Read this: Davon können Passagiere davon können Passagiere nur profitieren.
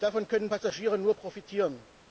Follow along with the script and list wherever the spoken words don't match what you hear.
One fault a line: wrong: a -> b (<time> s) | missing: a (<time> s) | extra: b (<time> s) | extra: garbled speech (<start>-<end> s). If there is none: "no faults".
missing: davon können Passagiere (1.0 s)